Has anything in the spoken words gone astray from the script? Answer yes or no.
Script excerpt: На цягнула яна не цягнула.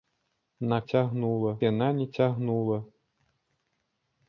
no